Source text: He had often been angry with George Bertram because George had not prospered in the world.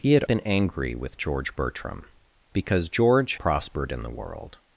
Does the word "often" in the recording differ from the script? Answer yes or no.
yes